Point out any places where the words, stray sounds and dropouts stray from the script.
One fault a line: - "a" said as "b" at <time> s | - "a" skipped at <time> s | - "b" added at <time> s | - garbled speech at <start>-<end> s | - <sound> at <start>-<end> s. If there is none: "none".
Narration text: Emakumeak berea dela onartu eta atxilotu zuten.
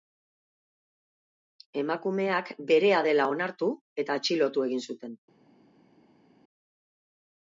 - "egin" added at 4.7 s